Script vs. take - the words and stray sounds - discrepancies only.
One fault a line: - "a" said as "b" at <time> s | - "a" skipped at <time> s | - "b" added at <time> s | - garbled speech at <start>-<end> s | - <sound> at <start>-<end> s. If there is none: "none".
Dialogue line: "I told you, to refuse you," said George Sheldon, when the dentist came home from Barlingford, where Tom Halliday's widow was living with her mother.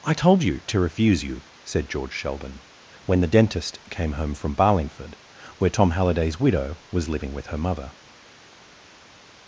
none